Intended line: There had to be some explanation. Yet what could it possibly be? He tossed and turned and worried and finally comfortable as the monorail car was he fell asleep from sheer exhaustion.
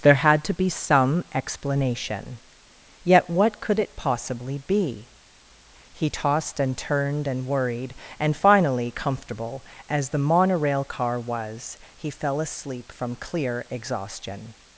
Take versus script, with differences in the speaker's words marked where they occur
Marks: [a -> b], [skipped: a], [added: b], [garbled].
There had to be some explanation. Yet what could it possibly be? He tossed and turned and worried and finally comfortable as the monorail car was he fell asleep from [sheer -> clear] exhaustion.